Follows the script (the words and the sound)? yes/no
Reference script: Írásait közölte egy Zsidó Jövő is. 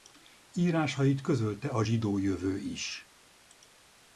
no